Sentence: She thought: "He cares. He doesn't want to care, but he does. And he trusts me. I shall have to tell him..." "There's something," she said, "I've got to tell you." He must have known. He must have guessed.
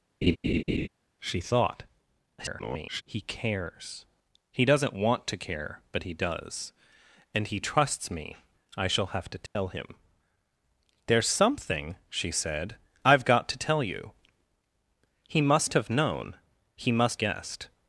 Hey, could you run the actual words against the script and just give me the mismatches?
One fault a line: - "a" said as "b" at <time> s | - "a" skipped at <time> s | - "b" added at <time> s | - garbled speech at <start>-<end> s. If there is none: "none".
- garbled speech at 2.4-3.0 s
- "have" skipped at 17.2 s